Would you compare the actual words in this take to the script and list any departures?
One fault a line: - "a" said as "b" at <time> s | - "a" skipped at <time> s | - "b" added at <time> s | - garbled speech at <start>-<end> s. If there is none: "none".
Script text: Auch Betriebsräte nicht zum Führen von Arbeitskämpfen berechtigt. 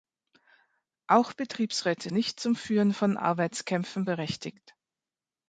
none